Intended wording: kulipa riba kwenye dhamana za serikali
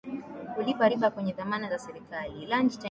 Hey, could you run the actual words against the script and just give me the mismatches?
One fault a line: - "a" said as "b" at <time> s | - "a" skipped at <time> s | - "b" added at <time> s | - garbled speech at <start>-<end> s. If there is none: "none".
none